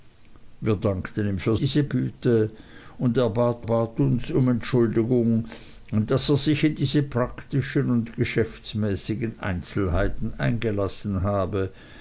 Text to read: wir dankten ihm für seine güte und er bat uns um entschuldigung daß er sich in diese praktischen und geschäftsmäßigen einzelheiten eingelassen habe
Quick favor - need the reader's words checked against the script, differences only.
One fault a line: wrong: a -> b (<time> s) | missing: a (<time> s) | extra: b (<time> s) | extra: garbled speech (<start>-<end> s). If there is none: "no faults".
wrong: seine -> diese (1.5 s)
extra: bat (3.6 s)